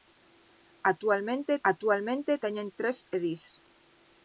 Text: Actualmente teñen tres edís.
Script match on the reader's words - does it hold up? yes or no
no